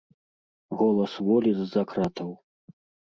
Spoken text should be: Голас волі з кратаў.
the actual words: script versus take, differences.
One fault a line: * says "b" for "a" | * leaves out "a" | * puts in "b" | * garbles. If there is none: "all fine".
* puts in "за"